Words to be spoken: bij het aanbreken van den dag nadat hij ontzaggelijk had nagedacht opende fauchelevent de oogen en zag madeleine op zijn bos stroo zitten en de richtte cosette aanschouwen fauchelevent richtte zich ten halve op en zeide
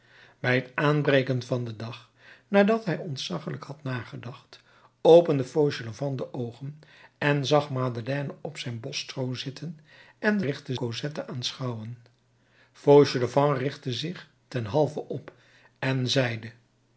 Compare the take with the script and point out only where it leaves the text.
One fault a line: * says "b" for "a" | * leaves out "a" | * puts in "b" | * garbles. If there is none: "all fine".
all fine